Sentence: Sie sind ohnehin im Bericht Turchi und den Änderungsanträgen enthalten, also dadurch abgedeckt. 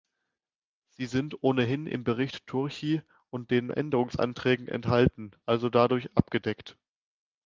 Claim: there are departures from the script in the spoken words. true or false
false